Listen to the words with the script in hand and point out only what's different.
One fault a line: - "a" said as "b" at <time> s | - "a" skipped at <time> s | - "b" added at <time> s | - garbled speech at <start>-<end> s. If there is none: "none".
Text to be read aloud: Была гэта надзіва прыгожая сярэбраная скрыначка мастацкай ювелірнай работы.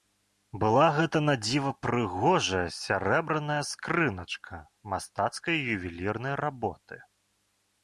none